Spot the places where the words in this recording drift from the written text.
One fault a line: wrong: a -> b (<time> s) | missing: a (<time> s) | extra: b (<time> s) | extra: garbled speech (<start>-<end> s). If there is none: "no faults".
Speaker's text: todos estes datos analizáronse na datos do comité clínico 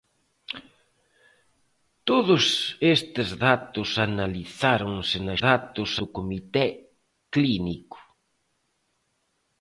no faults